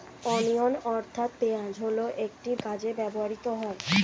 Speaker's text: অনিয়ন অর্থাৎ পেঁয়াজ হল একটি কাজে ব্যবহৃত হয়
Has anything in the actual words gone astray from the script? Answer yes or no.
no